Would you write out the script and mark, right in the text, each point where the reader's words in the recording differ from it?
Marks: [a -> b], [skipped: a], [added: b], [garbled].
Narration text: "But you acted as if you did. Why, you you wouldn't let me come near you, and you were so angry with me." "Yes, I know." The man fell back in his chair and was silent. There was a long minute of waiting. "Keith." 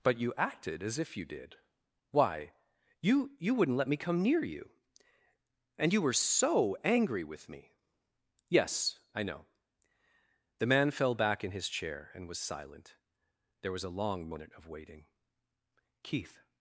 "But you acted as if you did. Why, you you wouldn't let me come near you, and you were so angry with me." "Yes, I know." The man fell back in his chair and was silent. There was a long [minute -> moment] of waiting. "Keith."